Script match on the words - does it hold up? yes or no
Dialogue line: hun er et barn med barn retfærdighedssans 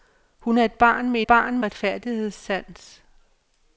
yes